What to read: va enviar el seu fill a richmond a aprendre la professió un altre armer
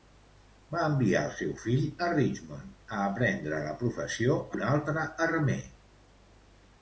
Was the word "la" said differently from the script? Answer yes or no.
no